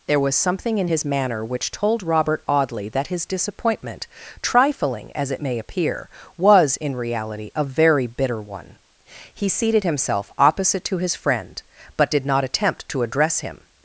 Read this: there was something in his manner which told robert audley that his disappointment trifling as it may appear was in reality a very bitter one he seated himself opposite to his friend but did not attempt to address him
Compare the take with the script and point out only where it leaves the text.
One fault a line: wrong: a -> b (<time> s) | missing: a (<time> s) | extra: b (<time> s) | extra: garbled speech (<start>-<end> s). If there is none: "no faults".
no faults